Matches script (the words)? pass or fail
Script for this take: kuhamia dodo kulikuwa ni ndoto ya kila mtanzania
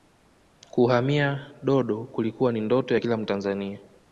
pass